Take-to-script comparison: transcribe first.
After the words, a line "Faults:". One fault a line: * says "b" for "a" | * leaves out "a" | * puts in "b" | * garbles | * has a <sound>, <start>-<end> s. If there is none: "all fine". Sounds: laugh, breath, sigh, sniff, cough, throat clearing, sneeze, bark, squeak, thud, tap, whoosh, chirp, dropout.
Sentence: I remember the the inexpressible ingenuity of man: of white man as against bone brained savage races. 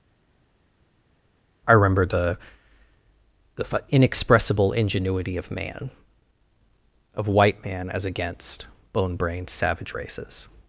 I remember the the inexpressible ingenuity of man: of white man as against bone brained savage races.
Faults:
all fine